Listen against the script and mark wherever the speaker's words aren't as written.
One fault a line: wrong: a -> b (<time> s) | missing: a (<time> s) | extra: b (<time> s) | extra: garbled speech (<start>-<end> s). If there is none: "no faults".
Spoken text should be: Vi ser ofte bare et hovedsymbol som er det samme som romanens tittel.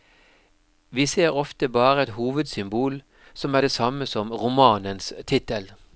no faults